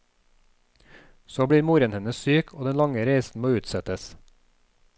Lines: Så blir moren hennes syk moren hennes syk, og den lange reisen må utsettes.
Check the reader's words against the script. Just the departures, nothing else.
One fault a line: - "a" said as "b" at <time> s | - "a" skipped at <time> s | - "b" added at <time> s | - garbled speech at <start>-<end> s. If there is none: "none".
- "moren hennes syk" skipped at 2.5 s